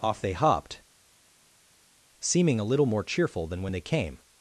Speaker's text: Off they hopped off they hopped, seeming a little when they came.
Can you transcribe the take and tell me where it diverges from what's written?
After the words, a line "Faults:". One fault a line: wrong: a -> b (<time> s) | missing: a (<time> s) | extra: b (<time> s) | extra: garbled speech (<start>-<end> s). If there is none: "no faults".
Off they hopped, seeming a little more cheerful than when they came.
Faults:
wrong: off they hopped seeming a little -> seeming a little more cheerful than (2.2 s)